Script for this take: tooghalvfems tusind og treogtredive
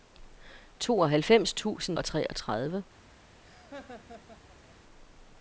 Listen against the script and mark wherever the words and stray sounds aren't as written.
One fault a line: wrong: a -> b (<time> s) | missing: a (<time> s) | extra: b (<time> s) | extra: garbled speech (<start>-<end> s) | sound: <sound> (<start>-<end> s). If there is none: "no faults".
sound: laugh (3.4-4.8 s)